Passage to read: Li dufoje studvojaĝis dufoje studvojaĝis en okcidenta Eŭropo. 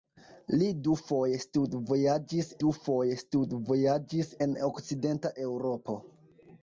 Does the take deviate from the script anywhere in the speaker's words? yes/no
no